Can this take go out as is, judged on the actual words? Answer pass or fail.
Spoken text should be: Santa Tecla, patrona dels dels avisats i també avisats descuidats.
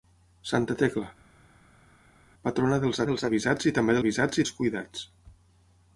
pass